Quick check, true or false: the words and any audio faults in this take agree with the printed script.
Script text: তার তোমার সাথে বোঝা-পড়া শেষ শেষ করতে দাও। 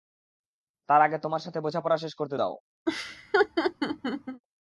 false